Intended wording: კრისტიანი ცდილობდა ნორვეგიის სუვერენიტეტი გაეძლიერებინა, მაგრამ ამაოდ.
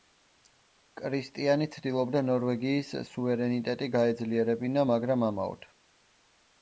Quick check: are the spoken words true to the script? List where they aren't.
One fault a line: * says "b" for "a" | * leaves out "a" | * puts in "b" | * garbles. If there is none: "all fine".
all fine